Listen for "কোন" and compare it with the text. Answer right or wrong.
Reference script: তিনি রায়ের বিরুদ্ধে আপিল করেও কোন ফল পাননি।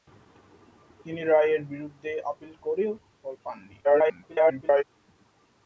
wrong